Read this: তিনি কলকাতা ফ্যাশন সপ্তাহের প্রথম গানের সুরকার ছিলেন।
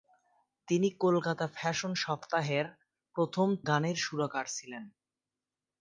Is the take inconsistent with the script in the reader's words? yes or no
no